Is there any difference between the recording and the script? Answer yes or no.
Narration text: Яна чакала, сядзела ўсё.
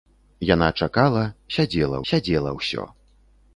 yes